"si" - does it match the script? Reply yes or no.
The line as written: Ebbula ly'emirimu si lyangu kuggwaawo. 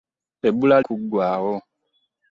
no